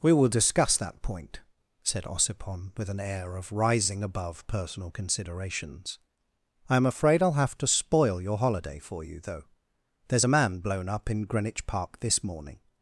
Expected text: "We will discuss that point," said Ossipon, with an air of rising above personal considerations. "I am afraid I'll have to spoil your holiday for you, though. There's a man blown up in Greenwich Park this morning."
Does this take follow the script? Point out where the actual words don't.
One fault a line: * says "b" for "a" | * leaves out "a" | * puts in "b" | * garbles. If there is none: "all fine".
all fine